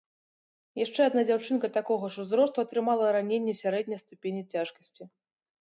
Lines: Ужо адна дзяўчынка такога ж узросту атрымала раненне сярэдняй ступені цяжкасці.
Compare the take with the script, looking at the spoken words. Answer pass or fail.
fail